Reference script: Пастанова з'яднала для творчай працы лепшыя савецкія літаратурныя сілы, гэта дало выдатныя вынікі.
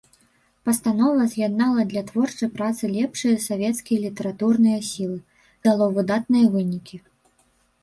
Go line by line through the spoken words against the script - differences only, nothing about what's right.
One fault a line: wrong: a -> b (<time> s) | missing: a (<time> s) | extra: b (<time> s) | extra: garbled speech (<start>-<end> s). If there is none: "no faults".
missing: гэта (5.2 s)